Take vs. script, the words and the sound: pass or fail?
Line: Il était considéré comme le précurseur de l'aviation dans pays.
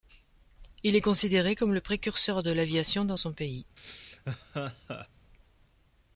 fail